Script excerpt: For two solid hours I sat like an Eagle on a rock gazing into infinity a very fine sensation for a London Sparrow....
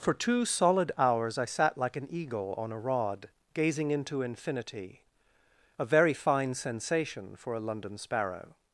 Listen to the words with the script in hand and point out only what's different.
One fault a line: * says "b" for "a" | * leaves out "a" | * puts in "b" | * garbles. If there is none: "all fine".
* says "rod" for "rock"